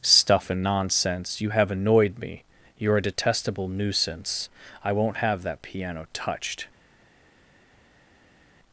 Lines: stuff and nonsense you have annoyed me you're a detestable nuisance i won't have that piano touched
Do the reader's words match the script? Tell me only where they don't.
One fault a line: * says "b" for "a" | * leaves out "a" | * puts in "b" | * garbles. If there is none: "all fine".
all fine